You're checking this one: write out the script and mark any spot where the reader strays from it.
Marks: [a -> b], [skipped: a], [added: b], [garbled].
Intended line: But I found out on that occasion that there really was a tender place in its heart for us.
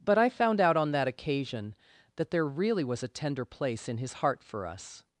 But I found out on that occasion that there really was a tender place in [its -> his] heart for us.